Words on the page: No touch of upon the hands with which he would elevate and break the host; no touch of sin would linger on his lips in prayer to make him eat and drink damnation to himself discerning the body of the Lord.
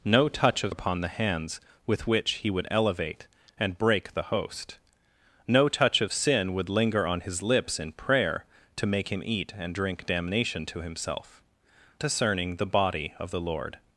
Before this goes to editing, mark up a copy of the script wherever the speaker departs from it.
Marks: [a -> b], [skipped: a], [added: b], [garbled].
No touch of upon the hands with which he would elevate and break the host; no touch of sin would linger on his lips in prayer to make him eat and drink damnation to himself discerning the body of the Lord.